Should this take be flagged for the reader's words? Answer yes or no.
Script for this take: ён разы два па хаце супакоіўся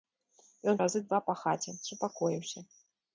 no